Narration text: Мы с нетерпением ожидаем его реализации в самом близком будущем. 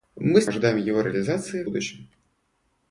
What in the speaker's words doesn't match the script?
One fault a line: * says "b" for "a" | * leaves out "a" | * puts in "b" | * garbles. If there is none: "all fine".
* leaves out "нетерпением"
* leaves out "в самом близком"